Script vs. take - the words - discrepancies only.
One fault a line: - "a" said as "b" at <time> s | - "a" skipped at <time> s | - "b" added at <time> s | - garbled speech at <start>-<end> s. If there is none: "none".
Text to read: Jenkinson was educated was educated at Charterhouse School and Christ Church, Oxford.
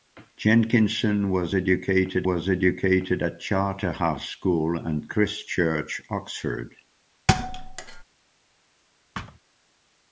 none